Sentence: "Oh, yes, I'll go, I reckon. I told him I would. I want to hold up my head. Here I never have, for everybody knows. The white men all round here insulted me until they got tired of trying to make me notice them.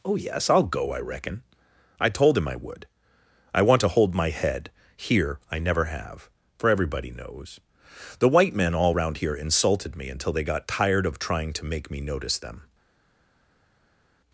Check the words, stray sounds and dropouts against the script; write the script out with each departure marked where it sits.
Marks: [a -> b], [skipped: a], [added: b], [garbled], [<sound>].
"Oh, yes, I'll go, I reckon. I told him I would. I want to hold [skipped: up] my head. Here I never have, for everybody knows. The white men all round here insulted me until they got tired of trying to make me notice them.